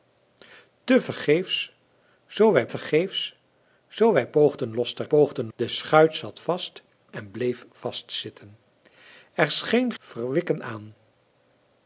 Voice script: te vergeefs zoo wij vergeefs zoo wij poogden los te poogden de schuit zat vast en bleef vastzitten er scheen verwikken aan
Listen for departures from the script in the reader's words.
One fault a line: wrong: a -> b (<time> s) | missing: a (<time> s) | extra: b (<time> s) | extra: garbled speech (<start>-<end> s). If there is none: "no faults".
no faults